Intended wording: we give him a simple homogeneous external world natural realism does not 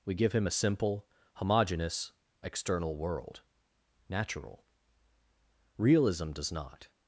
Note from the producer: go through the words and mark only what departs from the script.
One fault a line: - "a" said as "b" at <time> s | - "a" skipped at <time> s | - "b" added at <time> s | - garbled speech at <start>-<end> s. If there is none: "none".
none